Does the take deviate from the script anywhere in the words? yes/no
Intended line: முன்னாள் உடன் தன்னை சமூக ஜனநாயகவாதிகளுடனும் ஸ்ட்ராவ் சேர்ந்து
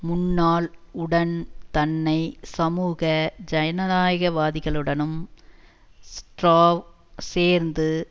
no